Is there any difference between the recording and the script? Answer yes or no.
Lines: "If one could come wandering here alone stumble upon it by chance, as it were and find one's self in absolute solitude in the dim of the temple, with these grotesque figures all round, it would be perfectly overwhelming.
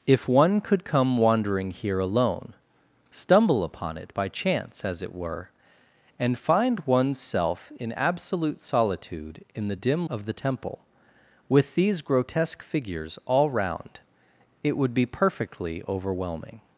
no